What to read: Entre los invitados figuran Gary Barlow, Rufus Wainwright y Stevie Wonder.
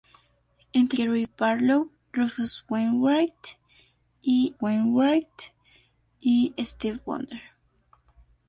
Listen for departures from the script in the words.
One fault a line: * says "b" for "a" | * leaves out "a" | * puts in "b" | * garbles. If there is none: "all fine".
* leaves out "los invitados figuran"
* puts in "Wainwright y"